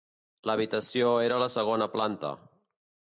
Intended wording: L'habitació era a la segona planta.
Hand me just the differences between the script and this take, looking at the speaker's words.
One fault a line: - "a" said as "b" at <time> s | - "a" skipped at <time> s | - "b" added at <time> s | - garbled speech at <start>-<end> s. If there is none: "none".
none